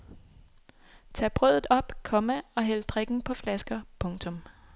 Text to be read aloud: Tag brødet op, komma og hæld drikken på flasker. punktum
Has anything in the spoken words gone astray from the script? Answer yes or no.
no